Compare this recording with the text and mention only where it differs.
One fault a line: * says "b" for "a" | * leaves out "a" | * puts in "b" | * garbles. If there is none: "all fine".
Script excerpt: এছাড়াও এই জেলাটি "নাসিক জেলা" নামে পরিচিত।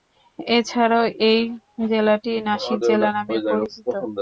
all fine